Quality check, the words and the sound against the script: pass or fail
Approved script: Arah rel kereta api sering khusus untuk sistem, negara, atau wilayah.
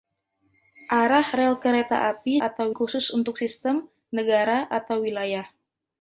fail